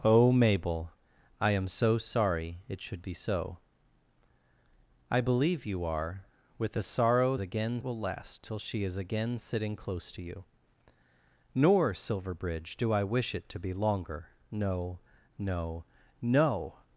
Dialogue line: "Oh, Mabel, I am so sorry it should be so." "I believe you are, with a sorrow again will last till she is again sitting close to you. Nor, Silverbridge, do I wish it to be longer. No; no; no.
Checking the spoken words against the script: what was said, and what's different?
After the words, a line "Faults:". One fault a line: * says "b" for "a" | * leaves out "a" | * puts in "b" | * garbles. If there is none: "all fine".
"Oh, Mabel, I am so sorry it should be so." "I believe you are, with a sorrow again will last till she is again sitting close to you. Nor, Silverbridge, do I wish it to be longer. No; no; no.
Faults:
all fine